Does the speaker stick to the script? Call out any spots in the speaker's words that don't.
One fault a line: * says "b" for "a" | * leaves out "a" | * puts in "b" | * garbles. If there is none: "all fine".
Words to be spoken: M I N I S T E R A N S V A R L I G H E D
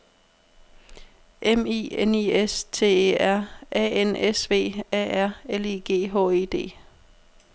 all fine